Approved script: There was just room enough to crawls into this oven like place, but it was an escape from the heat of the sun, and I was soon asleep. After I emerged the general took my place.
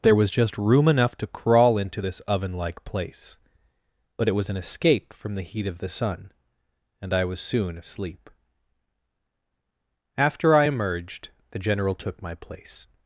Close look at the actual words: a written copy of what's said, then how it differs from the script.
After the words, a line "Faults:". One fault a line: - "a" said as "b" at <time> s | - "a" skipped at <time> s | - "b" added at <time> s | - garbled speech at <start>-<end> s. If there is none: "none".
There was just room enough to crawl into this oven like place, but it was an escape from the heat of the sun, and I was soon asleep. After I emerged the general took my place.
Faults:
- "crawls" said as "crawl" at 1.3 s